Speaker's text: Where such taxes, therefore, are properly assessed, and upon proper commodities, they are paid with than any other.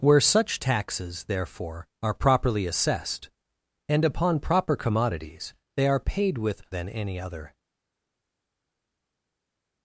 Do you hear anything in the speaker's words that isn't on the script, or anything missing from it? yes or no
no